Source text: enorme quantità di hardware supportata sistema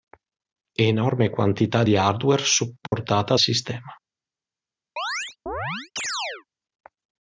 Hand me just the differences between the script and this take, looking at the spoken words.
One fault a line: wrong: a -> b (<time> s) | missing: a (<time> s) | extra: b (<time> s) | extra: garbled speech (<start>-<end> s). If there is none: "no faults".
no faults